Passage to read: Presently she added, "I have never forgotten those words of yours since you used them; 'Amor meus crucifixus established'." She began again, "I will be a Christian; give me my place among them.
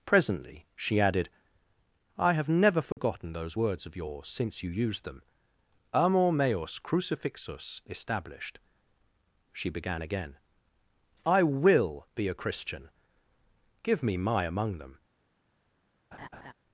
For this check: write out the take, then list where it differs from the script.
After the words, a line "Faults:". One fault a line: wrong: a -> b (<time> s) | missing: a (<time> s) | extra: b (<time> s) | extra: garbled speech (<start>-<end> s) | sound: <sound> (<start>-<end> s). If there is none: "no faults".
Presently she added, "I have never forgotten those words of yours since you used them; 'Amor meus crucifixus established'." She began again, "I will be a Christian; give me my among them.
Faults:
sound: dropout (2.9-3.0 s)
missing: place (14.4 s)
sound: laugh (16.1-16.5 s)